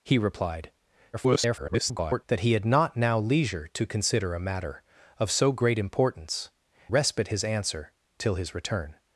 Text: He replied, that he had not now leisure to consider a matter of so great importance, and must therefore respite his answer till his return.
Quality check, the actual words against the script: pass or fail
fail